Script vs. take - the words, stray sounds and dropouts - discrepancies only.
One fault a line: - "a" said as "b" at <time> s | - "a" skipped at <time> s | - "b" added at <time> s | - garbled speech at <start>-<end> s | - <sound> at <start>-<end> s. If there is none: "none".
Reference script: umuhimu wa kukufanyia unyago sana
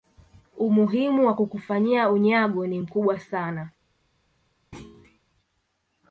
- "ni mkubwa" added at 2.7 s
- thud at 4.7-5.2 s